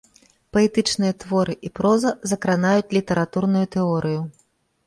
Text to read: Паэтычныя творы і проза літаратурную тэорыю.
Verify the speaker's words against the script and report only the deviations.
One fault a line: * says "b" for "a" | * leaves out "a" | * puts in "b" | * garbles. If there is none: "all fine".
* puts in "закранаюць"